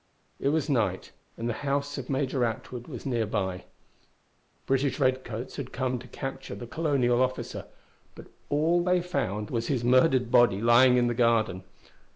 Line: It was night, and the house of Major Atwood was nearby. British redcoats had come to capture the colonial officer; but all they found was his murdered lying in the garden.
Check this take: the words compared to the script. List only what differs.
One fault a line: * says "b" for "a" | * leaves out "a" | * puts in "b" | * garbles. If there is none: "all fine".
* puts in "body"